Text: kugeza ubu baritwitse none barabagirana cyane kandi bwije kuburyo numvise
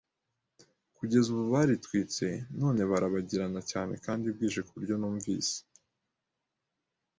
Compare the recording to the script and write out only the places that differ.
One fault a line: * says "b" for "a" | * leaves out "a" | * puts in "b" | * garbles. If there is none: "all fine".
all fine